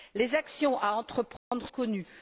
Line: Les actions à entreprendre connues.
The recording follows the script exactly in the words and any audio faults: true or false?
false